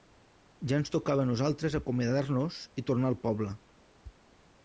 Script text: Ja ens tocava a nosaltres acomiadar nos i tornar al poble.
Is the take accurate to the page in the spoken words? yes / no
yes